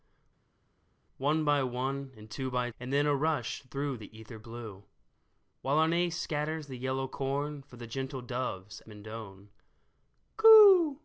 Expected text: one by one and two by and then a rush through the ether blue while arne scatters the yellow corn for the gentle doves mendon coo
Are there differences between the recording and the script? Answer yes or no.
no